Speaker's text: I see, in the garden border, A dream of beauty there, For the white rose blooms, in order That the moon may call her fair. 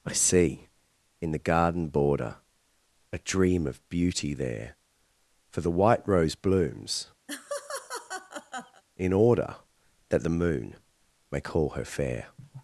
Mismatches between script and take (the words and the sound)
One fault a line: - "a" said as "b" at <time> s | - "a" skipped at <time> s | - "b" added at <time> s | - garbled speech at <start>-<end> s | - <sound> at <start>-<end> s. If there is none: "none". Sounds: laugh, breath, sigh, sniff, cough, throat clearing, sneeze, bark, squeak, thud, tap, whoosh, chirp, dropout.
- laugh at 7.3-8.8 s